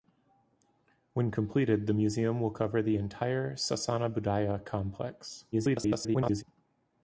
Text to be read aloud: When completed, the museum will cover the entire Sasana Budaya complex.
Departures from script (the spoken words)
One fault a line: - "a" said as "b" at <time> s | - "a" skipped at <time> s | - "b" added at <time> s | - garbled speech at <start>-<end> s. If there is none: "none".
- garbled speech at 5.5-6.4 s